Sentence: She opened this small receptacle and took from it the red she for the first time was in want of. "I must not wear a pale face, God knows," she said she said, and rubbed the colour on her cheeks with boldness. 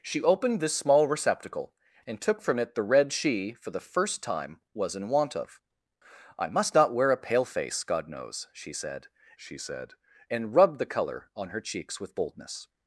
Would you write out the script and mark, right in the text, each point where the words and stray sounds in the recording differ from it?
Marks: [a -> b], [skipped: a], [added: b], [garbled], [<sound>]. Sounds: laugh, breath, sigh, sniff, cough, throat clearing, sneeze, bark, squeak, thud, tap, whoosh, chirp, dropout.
She opened this small receptacle and took from it the red she for the first time was in want of. "I must not wear a pale face, God knows," she said she said, and rubbed the colour on her cheeks with boldness.